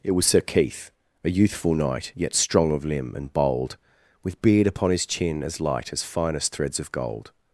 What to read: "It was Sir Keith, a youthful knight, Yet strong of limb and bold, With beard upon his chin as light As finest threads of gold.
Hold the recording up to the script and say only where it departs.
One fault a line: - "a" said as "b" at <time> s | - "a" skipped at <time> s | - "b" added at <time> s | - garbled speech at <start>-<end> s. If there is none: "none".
none